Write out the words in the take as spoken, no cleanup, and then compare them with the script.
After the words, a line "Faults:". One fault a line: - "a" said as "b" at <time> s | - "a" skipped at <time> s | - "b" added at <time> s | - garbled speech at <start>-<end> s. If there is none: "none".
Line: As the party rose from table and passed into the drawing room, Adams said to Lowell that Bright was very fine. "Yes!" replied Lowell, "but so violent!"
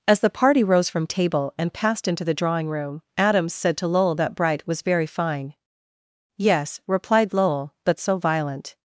As the party rose from table and passed into the drawing room, Adams said to Lowell that Bright was very fine. "Yes!" replied Lowell, "but so violent!"
Faults:
none